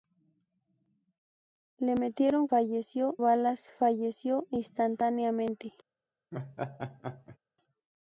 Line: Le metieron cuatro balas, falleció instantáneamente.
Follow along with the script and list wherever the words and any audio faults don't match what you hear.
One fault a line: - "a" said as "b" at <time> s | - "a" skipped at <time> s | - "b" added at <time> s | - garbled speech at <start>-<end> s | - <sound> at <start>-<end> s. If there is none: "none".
- "cuatro" said as "falleció" at 2.5 s
- laugh at 6.3-7.4 s